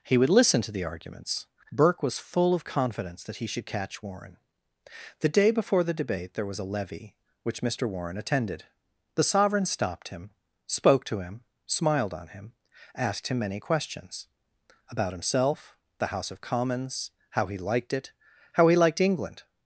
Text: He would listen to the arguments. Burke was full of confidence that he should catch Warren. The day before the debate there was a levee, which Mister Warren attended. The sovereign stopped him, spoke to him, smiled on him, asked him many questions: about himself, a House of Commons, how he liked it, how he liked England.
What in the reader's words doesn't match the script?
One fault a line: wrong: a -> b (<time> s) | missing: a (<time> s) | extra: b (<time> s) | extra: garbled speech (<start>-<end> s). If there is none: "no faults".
wrong: a -> the (16.0 s)